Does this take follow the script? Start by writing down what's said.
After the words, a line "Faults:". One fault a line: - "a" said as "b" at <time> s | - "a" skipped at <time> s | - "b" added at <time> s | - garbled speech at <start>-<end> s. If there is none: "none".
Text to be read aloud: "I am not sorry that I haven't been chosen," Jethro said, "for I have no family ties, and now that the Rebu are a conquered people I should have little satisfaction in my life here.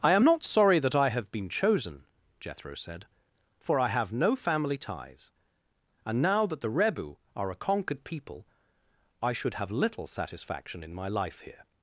"I am not sorry that I have been chosen," Jethro said, "for I have no family ties, and now that the Rebu are a conquered people I should have little satisfaction in my life here.
Faults:
- "haven't" said as "have" at 1.1 s